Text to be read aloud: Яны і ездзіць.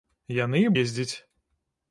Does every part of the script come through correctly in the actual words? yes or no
yes